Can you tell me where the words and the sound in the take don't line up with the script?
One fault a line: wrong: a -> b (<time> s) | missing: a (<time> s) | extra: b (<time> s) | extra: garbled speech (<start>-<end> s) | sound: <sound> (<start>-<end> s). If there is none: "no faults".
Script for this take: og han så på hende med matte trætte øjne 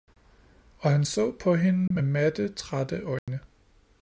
sound: dropout (1.9-1.9 s)
sound: dropout (3.2-3.3 s)